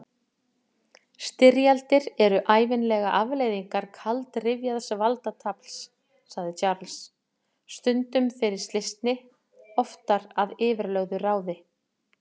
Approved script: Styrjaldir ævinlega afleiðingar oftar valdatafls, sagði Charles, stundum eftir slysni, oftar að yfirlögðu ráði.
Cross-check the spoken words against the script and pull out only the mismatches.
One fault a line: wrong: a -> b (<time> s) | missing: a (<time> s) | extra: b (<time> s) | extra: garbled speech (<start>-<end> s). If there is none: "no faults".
extra: eru (2.3 s)
wrong: oftar -> kaldrifjaðs (4.0 s)
wrong: eftir -> fyrir (8.4 s)